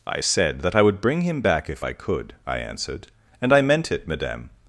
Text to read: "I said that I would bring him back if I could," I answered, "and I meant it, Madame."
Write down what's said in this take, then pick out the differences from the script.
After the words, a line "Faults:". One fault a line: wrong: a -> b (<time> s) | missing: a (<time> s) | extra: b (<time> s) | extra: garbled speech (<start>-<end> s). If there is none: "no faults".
"I said that I would bring him back if I could," I answered, "and I meant it, Madame."
Faults:
no faults